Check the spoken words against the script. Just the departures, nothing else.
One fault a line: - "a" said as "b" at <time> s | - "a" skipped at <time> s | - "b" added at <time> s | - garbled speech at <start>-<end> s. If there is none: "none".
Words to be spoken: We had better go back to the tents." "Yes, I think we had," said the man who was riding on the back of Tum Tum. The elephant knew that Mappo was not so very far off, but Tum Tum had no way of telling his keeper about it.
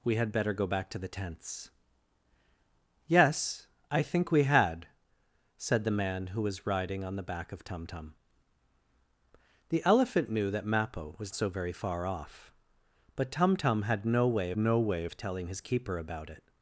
- "not" skipped at 11.3 s
- "no way" added at 14.5 s